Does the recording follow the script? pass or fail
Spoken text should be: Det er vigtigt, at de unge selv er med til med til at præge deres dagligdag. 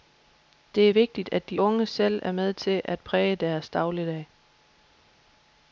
fail